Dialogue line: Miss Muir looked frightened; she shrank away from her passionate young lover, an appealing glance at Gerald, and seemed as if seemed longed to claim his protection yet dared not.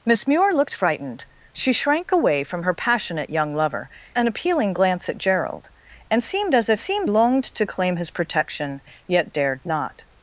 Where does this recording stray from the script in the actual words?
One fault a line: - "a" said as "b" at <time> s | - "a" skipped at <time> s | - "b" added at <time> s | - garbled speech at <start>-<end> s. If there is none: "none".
none